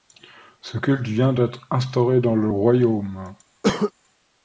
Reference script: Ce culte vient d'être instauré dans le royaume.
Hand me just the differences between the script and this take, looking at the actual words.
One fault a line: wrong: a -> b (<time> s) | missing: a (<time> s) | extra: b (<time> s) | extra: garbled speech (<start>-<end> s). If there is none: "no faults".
no faults